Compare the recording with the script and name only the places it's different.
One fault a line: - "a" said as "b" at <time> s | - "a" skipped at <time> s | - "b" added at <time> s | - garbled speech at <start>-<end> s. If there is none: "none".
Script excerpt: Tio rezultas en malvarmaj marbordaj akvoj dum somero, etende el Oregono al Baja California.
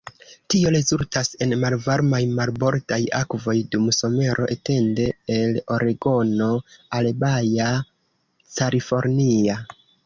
none